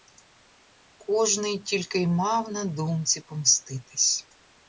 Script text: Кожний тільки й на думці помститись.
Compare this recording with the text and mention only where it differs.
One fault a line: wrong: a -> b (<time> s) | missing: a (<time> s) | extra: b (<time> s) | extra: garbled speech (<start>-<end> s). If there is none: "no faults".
extra: мав (2.1 s)